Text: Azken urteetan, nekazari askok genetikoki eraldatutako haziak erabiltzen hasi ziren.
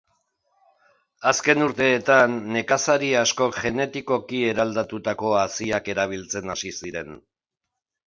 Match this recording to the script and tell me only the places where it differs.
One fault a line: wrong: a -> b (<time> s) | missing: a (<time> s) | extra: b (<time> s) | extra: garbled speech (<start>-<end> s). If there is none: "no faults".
no faults